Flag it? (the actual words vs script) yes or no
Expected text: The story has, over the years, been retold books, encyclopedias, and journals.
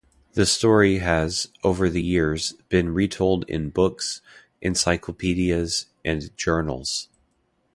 yes